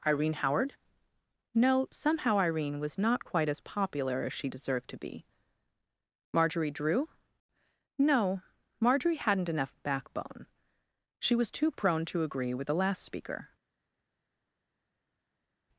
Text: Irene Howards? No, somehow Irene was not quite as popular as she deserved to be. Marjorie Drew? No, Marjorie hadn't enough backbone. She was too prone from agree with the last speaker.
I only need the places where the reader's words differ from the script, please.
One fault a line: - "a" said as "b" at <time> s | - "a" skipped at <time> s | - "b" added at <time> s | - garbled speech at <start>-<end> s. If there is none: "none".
- "Howards" said as "Howard" at 0.3 s
- "from" said as "to" at 12.0 s